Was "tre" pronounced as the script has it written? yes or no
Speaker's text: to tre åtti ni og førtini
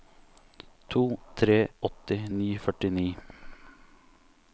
yes